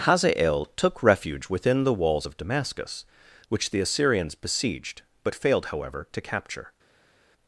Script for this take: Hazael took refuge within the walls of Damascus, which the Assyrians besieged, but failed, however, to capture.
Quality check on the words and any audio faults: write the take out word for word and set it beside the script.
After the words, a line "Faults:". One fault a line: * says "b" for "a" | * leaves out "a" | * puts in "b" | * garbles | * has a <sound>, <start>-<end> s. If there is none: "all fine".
Hazael took refuge within the walls of Damascus, which the Assyrians besieged, but failed, however, to capture.
Faults:
all fine